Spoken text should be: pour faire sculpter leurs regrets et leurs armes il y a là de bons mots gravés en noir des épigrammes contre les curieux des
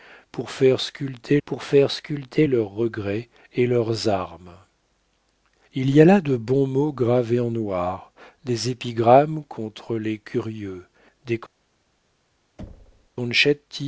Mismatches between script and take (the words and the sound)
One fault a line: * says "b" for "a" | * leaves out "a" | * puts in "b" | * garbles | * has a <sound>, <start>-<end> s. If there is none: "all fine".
* puts in "pour faire sculpter"
* has a thud, 12.6-13.1 s